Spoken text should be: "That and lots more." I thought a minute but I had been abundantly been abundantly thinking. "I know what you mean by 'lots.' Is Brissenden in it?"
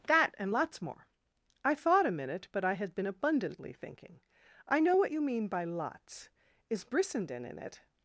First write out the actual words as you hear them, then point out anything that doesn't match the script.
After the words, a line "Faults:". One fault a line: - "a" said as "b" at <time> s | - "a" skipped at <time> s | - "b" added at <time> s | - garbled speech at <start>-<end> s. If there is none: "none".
"That and lots more." I thought a minute but I had been abundantly thinking. "I know what you mean by 'lots.' Is Brissenden in it?"
Faults:
- "been abundantly" skipped at 3.7 s